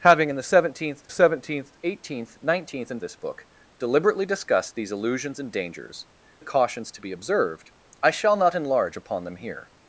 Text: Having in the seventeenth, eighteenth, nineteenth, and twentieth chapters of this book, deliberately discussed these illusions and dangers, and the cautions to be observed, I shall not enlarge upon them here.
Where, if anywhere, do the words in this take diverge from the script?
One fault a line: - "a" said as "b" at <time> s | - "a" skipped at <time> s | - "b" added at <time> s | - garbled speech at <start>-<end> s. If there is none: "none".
- "seventeenth" added at 1.1 s
- "twentieth chapters of" skipped at 3.0 s
- "and" skipped at 6.1 s